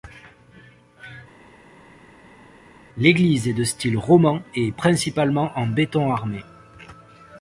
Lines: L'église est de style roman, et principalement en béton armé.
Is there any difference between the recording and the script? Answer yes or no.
no